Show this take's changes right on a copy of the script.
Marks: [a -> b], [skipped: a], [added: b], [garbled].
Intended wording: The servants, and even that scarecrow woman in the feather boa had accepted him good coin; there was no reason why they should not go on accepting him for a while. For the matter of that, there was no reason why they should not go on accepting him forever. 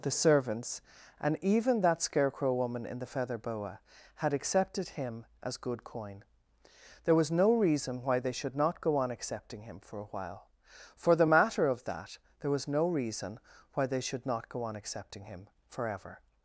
The servants, and even that scarecrow woman in the feather boa had accepted him [added: as] good coin; there was no reason why they should not go on accepting him for a while. For the matter of that, there was no reason why they should not go on accepting him forever.